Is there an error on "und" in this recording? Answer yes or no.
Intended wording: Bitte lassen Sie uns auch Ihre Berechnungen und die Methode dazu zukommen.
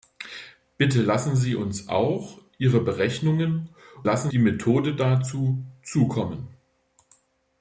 yes